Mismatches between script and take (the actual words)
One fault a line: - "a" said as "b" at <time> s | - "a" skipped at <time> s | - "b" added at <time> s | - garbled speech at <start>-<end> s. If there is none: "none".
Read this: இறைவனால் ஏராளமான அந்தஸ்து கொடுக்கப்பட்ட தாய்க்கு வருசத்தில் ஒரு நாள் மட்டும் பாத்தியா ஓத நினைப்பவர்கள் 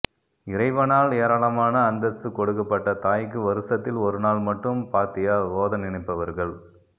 none